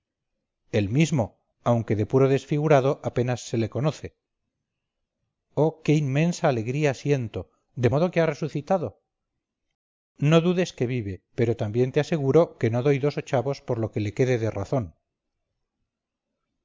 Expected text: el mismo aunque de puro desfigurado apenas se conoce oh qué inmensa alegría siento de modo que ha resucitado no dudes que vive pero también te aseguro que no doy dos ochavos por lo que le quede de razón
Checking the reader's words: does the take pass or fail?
fail